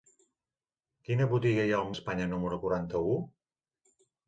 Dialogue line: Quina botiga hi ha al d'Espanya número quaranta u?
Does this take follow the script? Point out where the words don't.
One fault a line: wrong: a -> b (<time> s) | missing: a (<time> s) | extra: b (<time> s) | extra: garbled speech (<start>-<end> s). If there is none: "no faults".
no faults